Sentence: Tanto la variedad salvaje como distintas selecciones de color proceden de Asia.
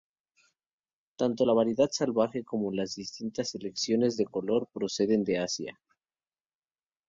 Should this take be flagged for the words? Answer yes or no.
yes